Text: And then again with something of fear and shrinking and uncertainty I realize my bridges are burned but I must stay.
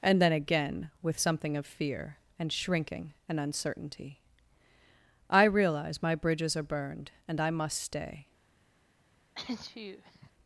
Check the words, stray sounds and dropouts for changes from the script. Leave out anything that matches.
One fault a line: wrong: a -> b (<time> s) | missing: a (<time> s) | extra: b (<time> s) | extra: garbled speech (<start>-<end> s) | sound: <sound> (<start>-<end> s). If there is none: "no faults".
wrong: but -> and (7.2 s)
sound: sneeze (9.3-10.3 s)